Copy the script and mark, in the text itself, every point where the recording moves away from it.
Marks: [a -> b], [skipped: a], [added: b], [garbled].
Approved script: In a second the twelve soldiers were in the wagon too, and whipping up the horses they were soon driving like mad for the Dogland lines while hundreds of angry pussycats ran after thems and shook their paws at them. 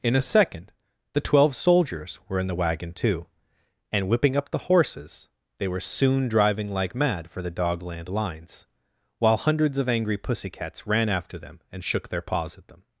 In a second the twelve soldiers were in the wagon too, and whipping up the horses they were soon driving like mad for the Dogland lines while hundreds of angry pussycats ran after [thems -> them] and shook their paws at them.